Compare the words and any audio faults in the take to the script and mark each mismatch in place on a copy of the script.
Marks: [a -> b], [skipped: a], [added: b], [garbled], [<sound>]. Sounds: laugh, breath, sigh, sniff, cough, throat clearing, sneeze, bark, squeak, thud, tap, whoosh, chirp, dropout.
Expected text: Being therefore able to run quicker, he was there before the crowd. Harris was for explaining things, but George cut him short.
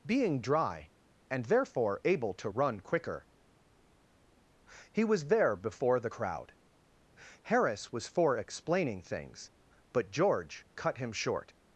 Being [added: dry and] therefore able to run quicker, he was there before the crowd. Harris was for explaining things, but George cut him short.